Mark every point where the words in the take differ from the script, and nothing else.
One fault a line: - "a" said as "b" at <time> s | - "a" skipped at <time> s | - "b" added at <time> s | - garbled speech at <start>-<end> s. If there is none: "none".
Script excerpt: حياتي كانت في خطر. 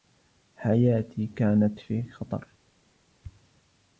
none